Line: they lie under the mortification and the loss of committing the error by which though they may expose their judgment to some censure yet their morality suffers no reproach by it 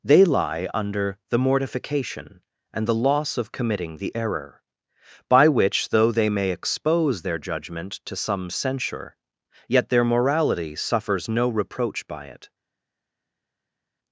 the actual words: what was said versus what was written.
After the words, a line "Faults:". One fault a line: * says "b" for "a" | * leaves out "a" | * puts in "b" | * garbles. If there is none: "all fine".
they lie under the mortification and the loss of committing the error by which though they may expose their judgment to some censure yet their morality suffers no reproach by it
Faults:
all fine